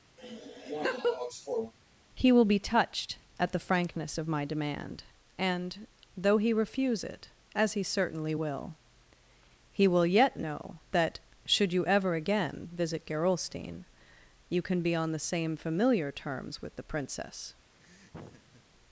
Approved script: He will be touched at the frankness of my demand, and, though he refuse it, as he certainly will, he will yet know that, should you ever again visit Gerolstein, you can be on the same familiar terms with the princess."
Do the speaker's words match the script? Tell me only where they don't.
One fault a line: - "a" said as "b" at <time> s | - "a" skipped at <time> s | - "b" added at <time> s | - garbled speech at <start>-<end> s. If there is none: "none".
none